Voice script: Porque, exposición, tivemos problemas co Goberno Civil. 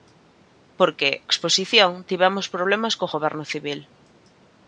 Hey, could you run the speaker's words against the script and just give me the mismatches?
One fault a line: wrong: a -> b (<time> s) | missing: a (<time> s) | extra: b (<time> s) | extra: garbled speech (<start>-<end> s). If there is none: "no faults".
no faults